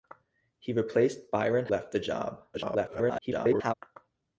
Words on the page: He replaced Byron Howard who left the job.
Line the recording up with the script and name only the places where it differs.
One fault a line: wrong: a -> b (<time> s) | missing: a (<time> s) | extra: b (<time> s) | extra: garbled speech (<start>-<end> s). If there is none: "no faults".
missing: Howard who (1.7 s)
extra: garbled speech (2.5-3.7 s)